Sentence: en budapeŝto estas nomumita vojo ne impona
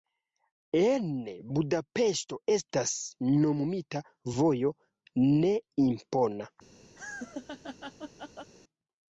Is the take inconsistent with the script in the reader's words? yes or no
no